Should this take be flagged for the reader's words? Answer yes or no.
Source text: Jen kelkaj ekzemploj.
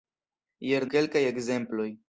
no